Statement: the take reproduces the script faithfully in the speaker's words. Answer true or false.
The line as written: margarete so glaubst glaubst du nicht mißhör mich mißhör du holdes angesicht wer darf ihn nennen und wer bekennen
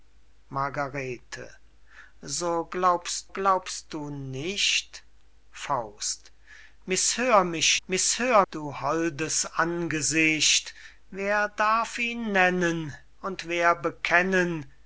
true